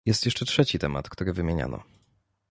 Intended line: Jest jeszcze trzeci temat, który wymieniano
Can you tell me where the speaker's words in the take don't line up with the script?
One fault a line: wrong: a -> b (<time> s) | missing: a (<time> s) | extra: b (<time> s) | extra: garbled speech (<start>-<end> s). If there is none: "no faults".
no faults